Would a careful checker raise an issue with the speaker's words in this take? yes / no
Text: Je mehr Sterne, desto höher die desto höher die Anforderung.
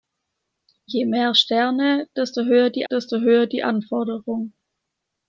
no